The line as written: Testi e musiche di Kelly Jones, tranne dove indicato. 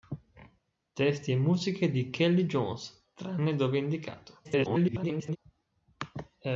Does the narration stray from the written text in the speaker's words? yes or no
yes